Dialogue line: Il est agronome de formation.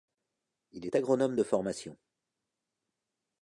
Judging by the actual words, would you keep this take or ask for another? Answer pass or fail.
pass